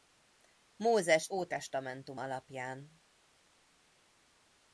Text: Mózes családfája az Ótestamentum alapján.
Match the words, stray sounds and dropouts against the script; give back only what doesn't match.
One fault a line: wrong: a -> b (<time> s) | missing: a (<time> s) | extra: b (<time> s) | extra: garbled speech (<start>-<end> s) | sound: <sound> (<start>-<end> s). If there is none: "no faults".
missing: családfája az (1.3 s)